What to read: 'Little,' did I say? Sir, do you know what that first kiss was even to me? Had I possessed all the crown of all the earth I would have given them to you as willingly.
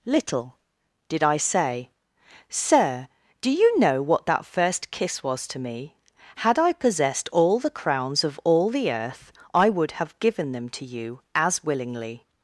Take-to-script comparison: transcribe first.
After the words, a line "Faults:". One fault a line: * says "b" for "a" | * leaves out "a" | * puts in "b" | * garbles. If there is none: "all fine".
'Little,' did I say? Sir, do you know what that first kiss was to me? Had I possessed all the crowns of all the earth I would have given them to you as willingly.
Faults:
* leaves out "even"
* says "crowns" for "crown"